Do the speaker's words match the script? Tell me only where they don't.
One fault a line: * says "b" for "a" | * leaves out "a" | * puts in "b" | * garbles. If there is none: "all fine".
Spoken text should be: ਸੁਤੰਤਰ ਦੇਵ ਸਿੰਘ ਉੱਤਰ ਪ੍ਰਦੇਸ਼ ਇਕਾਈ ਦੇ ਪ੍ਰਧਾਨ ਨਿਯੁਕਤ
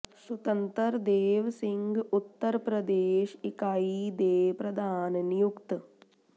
all fine